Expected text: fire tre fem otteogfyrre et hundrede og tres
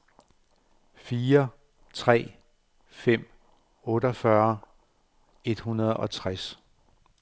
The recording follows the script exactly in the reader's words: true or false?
true